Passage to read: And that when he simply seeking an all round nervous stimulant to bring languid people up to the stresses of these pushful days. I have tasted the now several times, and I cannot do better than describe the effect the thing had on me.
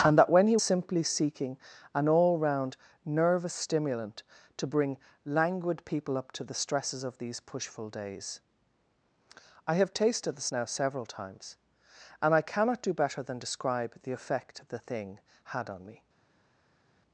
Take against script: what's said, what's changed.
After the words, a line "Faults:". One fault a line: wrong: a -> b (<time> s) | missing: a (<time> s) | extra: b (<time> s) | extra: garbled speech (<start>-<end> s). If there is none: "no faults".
And that when he simply seeking an all round nervous stimulant to bring languid people up to the stresses of these pushful days. I have tasted the now several times, and I cannot do better than describe the effect the thing had on me.
Faults:
no faults